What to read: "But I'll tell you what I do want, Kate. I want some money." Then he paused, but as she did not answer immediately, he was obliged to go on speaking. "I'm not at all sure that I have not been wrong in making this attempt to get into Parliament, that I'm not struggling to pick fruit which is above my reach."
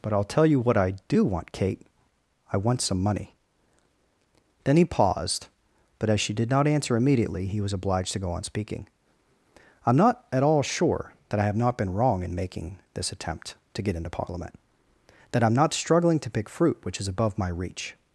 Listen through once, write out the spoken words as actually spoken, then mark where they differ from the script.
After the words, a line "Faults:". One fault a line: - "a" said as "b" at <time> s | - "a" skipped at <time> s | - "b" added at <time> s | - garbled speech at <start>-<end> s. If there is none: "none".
"But I'll tell you what I do want, Kate. I want some money." Then he paused, but as she did not answer immediately, he was obliged to go on speaking. "I'm not at all sure that I have not been wrong in making this attempt to get into Parliament, that I'm not struggling to pick fruit which is above my reach."
Faults:
none